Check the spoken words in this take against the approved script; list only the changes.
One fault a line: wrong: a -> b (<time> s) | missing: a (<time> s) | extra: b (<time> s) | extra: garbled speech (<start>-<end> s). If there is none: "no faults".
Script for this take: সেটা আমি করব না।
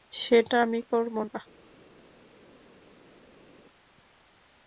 no faults